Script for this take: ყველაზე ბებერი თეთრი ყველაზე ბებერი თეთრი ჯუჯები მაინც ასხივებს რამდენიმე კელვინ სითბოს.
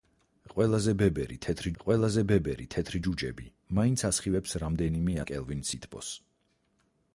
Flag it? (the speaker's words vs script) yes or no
no